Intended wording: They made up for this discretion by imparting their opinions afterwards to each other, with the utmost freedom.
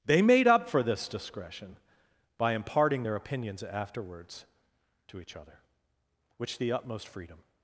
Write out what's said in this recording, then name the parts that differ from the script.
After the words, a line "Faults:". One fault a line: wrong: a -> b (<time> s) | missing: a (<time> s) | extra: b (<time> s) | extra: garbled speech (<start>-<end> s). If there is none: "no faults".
They made up for this discretion by imparting their opinions afterwards to each other, which the utmost freedom.
Faults:
wrong: with -> which (6.4 s)